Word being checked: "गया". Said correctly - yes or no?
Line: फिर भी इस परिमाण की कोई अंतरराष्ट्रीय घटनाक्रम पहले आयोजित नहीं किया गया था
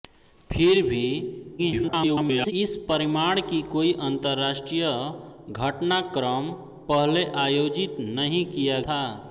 no